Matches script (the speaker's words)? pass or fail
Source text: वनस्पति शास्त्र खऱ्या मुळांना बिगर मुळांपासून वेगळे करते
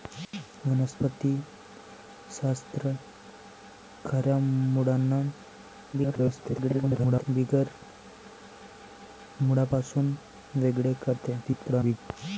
fail